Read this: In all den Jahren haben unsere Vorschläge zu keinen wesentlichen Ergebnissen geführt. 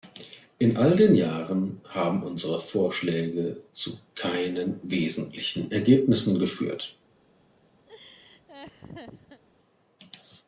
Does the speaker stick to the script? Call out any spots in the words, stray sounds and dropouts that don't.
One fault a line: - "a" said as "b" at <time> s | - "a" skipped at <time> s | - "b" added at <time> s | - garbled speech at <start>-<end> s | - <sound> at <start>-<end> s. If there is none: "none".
- laugh at 7.9-9.4 s